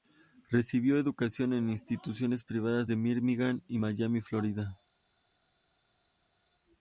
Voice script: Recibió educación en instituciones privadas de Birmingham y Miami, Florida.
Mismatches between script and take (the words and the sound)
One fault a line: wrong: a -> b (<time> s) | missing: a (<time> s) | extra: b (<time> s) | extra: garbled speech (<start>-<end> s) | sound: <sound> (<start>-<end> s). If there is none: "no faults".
no faults